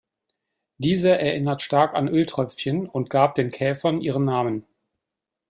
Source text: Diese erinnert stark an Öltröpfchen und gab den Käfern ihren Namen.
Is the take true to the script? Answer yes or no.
yes